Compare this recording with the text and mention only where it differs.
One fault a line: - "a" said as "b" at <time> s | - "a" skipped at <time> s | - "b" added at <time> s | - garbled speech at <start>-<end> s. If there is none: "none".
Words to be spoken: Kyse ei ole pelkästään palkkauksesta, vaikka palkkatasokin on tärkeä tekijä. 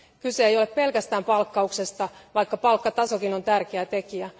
none